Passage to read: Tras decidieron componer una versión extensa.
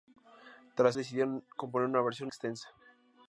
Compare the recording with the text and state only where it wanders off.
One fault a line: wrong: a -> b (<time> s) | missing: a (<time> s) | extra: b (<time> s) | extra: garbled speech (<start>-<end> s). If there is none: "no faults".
no faults